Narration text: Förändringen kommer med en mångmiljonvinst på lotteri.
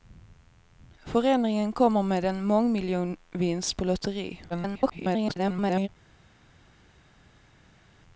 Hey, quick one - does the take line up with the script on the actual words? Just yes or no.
no